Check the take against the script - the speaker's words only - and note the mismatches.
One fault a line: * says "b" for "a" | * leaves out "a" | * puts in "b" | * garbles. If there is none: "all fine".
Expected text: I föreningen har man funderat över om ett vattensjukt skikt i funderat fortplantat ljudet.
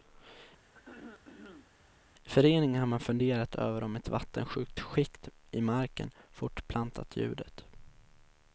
* says "marken" for "funderat"